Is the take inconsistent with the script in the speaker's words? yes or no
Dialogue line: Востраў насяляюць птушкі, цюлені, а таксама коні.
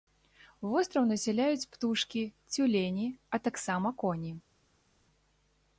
no